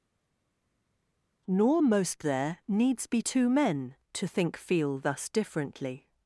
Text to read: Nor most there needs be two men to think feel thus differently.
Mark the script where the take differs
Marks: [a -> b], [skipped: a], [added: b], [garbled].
Nor most there needs be two men to think feel thus differently.